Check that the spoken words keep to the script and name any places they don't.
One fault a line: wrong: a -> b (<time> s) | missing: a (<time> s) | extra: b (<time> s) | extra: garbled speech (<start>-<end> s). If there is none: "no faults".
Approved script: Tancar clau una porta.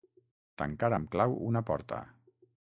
extra: amb (1.0 s)